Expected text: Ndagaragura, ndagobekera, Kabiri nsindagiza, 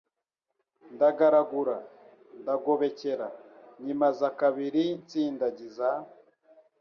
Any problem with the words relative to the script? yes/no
yes